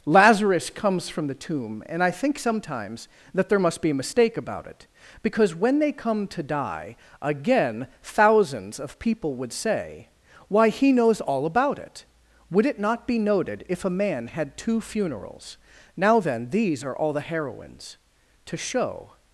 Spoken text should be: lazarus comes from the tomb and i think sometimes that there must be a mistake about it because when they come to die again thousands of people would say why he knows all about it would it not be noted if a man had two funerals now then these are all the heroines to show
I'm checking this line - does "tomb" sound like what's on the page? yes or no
yes